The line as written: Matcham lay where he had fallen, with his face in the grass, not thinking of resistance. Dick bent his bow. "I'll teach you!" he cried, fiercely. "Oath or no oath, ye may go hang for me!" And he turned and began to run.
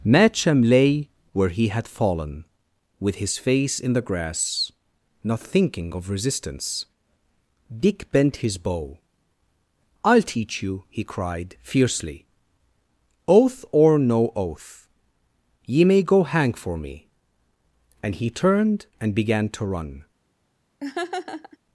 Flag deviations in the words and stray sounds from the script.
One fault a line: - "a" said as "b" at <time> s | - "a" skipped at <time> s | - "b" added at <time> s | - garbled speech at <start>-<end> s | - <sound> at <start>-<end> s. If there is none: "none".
- laugh at 20.8-21.6 s